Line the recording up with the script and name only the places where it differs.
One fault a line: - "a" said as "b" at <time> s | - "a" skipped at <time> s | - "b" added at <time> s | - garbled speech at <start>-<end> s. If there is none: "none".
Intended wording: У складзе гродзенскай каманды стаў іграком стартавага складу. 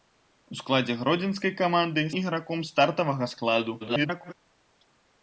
- "стаў" skipped at 2.1 s
- garbled speech at 3.8-4.3 s